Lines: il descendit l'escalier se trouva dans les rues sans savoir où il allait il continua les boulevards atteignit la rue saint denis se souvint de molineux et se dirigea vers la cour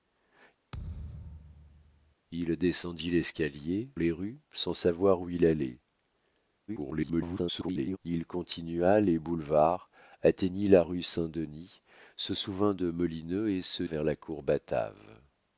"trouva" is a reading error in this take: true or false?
true